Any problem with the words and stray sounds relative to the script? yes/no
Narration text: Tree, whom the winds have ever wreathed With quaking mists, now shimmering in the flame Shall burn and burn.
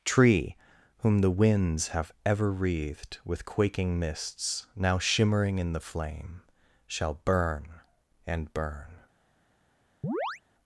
yes